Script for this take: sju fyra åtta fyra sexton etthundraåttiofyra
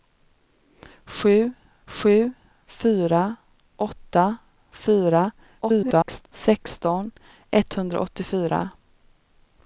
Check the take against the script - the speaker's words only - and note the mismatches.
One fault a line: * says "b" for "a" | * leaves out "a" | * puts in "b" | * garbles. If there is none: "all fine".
* puts in "sju"
* garbles